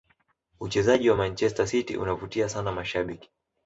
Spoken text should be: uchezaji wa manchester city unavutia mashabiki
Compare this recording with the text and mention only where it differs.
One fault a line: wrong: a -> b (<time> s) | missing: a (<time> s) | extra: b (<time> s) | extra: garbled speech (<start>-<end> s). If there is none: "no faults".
extra: sana (2.5 s)